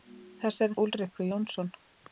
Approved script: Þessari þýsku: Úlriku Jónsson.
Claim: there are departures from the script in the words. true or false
true